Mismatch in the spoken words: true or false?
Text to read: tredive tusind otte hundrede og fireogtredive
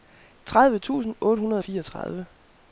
false